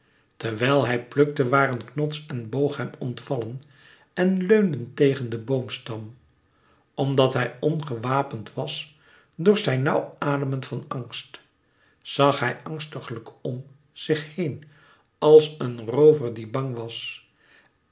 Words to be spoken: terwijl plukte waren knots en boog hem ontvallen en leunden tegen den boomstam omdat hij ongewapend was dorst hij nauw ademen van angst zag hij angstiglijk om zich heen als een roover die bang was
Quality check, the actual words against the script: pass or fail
fail